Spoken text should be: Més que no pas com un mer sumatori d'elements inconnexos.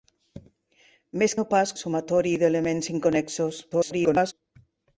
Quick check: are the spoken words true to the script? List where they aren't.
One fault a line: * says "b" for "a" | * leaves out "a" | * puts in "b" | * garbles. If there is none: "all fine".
* leaves out "que"
* leaves out "com un mer"
* garbles